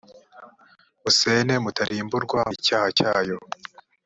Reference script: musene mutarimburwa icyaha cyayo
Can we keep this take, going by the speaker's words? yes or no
yes